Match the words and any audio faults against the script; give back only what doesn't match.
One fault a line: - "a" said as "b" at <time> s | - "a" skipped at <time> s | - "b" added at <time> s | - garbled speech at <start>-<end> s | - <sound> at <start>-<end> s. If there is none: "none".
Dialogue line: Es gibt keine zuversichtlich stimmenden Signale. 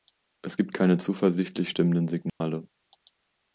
- dropout at 2.3-2.4 s